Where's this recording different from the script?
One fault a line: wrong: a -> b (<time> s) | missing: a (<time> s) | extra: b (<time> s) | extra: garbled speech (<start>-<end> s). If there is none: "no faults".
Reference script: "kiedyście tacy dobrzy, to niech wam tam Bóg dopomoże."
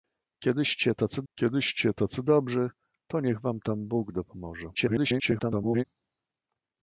extra: kiedyście tacy (1.3 s)
extra: garbled speech (4.7-5.8 s)